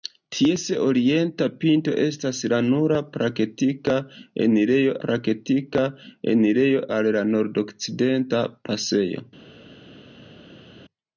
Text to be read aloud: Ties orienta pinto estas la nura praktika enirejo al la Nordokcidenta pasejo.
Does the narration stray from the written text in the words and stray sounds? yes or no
yes